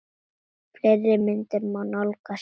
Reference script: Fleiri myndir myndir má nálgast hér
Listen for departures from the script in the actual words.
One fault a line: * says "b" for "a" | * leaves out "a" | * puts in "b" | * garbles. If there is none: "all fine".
* leaves out "myndir"